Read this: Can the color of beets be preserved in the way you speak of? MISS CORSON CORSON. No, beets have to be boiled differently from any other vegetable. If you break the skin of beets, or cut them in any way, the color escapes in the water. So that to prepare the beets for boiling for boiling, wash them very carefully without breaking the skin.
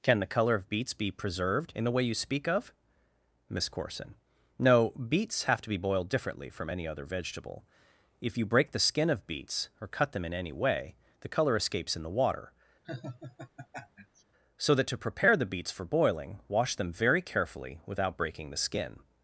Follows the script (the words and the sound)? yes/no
no